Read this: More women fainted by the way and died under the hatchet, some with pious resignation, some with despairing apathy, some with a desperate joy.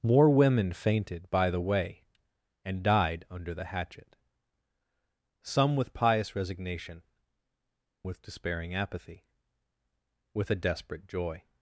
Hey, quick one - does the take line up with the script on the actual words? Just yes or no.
no